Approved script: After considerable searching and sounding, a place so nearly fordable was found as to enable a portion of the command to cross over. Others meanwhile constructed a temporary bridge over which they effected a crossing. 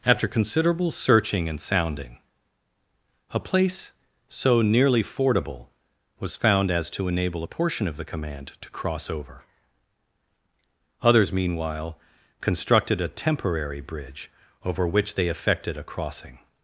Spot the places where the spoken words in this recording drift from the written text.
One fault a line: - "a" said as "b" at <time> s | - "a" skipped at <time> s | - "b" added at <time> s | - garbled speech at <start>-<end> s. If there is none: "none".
none